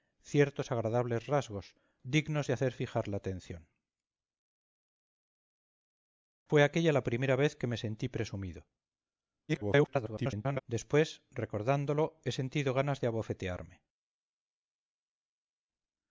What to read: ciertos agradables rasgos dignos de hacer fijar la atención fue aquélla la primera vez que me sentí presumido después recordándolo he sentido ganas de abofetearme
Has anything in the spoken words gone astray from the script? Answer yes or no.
yes